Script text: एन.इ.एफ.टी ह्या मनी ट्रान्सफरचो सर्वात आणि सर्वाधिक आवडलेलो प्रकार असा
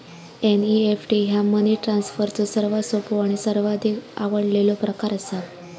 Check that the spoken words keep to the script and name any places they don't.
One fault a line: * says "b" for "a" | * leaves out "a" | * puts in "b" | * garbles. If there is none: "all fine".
* puts in "सोपो"